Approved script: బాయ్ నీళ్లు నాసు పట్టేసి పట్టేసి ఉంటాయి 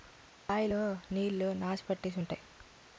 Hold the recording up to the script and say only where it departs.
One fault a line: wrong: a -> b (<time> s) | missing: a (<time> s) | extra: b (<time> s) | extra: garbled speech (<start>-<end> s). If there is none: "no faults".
extra: లో (0.7 s)
missing: పట్టేసి (2.2 s)